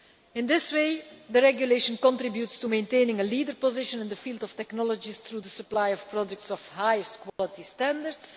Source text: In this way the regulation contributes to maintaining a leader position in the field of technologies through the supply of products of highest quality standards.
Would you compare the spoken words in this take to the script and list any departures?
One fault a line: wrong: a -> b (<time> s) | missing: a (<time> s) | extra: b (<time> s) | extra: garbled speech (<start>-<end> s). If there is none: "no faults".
no faults